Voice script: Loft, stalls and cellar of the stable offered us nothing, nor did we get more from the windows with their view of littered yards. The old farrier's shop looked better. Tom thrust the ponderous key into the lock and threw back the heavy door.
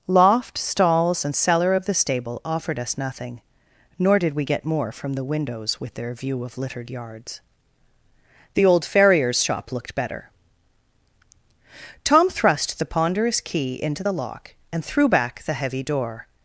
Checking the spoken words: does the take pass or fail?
pass